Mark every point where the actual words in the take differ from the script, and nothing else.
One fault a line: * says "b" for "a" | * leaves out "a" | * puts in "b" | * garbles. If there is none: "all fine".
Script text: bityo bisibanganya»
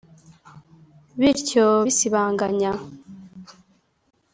all fine